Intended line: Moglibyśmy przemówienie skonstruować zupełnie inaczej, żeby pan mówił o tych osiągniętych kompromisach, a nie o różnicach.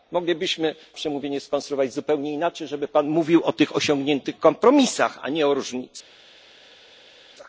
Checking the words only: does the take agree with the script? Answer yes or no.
yes